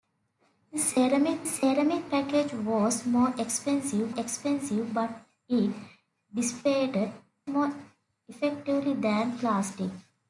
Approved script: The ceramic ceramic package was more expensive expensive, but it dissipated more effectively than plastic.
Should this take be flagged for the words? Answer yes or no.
no